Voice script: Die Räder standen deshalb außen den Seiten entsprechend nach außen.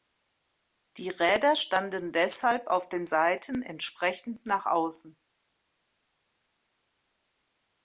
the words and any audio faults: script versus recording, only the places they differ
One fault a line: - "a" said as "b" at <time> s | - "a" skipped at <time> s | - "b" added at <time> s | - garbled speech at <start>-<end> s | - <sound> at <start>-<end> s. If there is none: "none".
- "außen" said as "auf" at 2.7 s